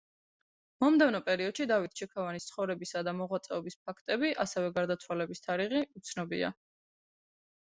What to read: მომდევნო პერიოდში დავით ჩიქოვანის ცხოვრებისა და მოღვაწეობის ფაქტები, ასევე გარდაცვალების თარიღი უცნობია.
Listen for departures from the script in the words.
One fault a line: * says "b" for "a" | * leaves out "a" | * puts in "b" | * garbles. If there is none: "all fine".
all fine